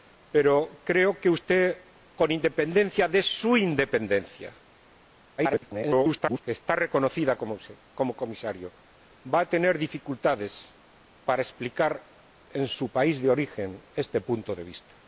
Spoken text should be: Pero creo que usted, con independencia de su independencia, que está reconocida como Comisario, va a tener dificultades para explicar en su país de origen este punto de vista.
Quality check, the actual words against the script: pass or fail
fail